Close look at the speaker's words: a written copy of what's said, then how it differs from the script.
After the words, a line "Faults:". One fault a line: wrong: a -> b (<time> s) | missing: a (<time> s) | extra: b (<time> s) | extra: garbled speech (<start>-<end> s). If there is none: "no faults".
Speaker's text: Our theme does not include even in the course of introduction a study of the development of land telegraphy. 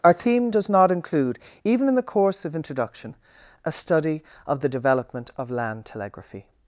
Our theme does not include even in the course of introduction a study of the development of land telegraphy.
Faults:
no faults